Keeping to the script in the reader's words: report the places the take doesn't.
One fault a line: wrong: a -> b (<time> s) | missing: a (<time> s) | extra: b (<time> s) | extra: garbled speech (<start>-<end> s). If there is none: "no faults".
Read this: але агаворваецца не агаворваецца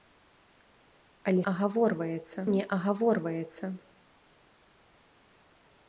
no faults